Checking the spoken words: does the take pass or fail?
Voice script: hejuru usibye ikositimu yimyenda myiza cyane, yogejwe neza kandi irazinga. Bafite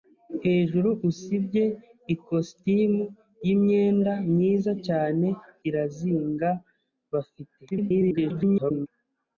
fail